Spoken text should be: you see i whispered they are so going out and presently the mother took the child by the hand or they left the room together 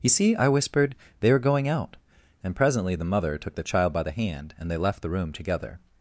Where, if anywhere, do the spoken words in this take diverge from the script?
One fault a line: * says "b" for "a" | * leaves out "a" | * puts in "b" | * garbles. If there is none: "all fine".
* leaves out "so"
* says "and" for "or"